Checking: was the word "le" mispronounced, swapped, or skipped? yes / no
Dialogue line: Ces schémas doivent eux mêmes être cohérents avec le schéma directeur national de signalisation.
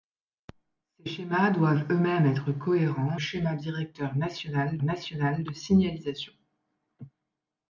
yes